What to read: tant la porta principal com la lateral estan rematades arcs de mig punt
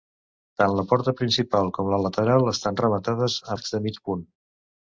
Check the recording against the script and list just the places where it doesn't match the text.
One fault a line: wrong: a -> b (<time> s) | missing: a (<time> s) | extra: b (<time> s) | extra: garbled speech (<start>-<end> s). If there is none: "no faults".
no faults